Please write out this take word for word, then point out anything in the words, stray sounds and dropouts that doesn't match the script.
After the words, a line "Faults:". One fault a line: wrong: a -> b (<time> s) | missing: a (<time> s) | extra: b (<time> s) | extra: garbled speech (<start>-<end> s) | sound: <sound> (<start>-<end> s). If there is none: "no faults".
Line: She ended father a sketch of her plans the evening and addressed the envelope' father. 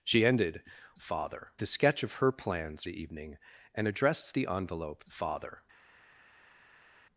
She ended father a sketch of her plans the evening and addressed the envelope' father.
Faults:
no faults